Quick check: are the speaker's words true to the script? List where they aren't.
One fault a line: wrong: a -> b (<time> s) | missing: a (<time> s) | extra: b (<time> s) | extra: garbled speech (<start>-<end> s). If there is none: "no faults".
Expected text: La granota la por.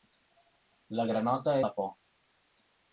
no faults